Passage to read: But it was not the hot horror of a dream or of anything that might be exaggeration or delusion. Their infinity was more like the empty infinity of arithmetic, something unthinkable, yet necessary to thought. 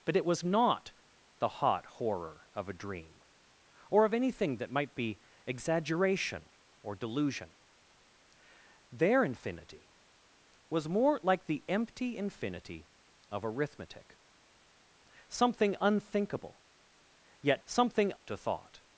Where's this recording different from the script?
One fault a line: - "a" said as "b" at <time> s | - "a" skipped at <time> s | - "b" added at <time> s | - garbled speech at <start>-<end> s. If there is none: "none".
- "necessary" said as "something" at 17.6 s